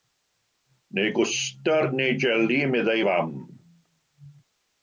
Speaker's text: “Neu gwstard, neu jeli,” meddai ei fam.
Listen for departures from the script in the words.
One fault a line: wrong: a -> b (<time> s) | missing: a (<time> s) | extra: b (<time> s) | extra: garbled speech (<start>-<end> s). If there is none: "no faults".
no faults